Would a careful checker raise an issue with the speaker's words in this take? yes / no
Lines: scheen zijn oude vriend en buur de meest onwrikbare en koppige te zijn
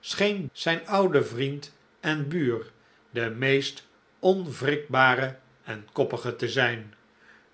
no